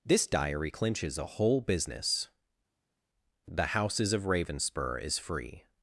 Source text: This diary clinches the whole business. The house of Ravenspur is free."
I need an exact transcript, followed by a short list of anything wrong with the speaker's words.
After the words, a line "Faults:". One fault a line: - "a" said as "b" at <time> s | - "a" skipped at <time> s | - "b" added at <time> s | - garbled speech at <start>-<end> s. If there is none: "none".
This diary clinches a whole business. The houses of Ravenspur is free."
Faults:
- "the" said as "a" at 1.2 s
- "house" said as "houses" at 3.7 s